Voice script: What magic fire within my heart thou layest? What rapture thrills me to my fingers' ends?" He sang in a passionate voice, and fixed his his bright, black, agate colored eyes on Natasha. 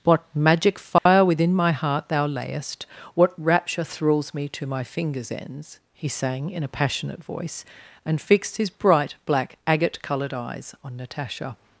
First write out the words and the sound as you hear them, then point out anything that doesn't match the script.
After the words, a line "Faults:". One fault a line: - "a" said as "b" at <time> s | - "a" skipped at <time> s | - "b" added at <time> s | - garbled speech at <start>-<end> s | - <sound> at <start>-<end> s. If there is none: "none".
What magic fire within my heart thou layest? What rapture thrills me to my fingers' ends?" He sang in a passionate voice, and fixed his bright, black, agate colored eyes on Natasha.
Faults:
- dropout at 1.0-1.1 s
- "his" skipped at 8.7 s